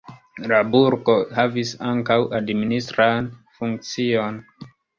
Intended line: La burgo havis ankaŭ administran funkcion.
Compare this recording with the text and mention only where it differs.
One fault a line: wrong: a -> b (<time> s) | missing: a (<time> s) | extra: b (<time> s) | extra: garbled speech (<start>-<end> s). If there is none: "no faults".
no faults